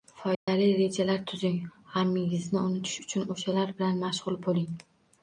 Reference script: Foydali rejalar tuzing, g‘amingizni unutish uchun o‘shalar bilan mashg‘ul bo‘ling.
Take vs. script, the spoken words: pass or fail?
pass